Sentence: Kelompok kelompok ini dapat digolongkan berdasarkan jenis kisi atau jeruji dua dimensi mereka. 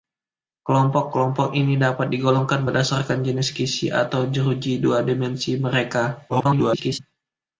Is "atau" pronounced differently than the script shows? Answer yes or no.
no